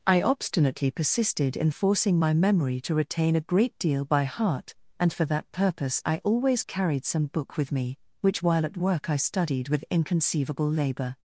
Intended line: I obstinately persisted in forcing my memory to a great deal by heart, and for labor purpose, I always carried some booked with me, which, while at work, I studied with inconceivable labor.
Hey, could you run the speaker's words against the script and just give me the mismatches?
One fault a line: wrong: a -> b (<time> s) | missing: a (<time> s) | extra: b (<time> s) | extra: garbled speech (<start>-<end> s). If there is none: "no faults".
extra: retain (2.9 s)
wrong: labor -> that (5.3 s)
wrong: booked -> book (7.3 s)